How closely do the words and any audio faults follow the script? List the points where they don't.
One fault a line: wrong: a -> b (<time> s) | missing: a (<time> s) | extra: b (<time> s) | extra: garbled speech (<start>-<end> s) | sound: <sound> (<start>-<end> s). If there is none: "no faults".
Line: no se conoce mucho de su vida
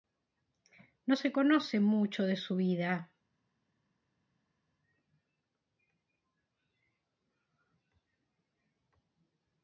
no faults